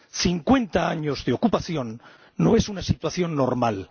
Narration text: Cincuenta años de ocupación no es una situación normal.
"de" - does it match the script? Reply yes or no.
yes